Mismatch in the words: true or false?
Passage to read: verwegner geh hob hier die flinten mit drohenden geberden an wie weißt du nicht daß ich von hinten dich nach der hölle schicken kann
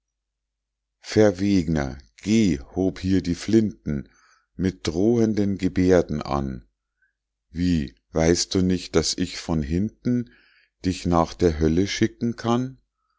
false